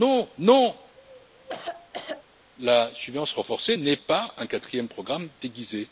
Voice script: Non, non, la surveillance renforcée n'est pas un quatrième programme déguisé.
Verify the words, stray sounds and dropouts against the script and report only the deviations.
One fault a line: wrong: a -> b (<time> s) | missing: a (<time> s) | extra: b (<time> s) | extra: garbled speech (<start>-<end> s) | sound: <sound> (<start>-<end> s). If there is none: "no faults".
sound: cough (1.0-2.2 s)